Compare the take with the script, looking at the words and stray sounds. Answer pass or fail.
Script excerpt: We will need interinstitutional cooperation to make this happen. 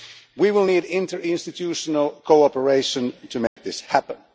fail